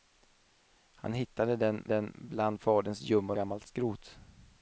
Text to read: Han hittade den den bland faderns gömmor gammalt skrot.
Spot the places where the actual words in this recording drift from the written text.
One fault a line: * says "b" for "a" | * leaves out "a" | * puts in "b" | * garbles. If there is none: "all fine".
all fine